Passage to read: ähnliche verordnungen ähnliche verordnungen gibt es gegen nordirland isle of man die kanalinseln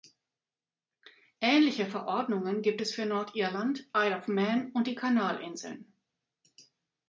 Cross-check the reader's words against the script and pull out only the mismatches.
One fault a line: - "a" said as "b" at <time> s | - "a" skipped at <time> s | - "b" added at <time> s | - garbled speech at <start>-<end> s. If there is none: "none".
- "ähnliche verordnungen" skipped at 2.6 s
- "gegen" said as "für" at 2.9 s
- "und" added at 4.7 s